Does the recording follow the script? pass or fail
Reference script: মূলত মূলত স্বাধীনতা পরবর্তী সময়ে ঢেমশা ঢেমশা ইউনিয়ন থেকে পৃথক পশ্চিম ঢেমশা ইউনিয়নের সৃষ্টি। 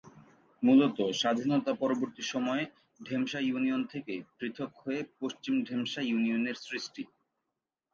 fail